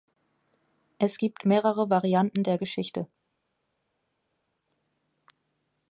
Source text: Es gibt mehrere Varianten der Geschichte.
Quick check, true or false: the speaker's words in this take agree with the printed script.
true